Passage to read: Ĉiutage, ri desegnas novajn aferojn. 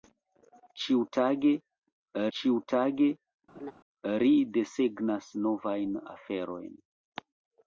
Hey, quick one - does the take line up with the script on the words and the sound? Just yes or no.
no